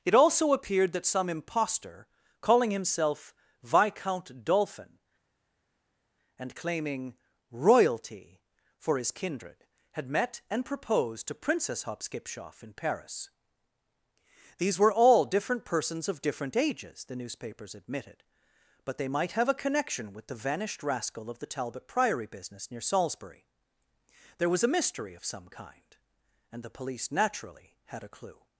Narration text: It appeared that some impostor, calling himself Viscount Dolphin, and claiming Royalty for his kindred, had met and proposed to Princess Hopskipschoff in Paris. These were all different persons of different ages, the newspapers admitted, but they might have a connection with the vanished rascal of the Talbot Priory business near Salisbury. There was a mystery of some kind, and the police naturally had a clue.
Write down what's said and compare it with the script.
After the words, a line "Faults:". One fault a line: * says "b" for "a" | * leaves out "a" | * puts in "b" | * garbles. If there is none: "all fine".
It also appeared that some impostor, calling himself Viscount Dolphin, and claiming Royalty for his kindred, had met and proposed to Princess Hopskipschoff in Paris. These were all different persons of different ages, the newspapers admitted, but they might have a connection with the vanished rascal of the Talbot Priory business near Salisbury. There was a mystery of some kind, and the police naturally had a clue.
Faults:
* puts in "also"